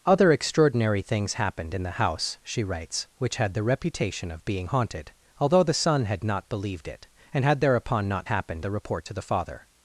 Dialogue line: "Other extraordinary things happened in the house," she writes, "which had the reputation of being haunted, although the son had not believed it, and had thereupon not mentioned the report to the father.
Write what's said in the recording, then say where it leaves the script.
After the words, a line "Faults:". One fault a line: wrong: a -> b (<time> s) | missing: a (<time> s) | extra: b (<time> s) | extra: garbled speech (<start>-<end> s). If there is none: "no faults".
"Other extraordinary things happened in the house," she writes, "which had the reputation of being haunted, although the son had not believed it, and had thereupon not happened the report to the father.
Faults:
wrong: mentioned -> happened (8.2 s)